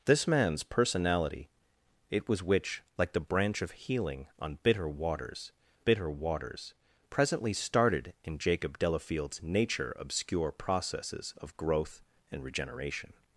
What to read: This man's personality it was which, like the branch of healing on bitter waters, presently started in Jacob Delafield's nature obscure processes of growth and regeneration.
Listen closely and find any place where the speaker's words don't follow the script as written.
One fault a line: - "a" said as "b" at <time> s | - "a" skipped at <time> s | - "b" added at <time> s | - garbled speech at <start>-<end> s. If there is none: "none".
- "bitter waters" added at 5.8 s